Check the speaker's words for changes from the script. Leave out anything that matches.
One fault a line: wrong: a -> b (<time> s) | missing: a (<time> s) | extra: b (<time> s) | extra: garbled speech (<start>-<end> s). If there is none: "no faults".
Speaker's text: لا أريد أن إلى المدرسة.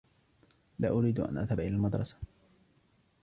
extra: أذهب (1.4 s)